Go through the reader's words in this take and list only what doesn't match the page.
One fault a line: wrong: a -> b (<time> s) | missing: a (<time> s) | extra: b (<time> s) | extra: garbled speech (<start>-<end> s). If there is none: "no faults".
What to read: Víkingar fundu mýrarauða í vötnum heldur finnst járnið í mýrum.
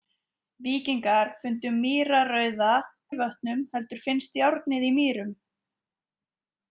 no faults